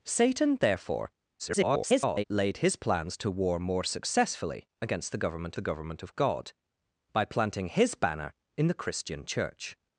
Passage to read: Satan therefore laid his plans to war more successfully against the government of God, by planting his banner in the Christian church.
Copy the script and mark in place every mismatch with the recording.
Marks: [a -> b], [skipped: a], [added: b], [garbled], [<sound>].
Satan therefore [garbled] laid his plans to war more successfully against the government [added: the government] of God, by planting his banner in the Christian church.